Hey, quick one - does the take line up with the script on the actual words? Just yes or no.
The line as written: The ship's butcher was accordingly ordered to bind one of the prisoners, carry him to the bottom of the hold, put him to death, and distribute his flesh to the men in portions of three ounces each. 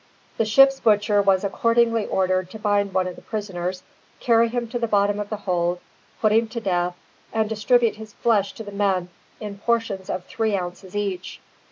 yes